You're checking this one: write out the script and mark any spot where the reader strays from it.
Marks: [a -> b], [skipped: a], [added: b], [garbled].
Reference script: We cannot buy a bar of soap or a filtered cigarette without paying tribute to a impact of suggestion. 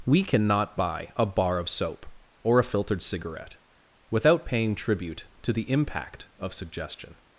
We cannot buy a bar of soap or a filtered cigarette without paying tribute to [a -> the] impact of suggestion.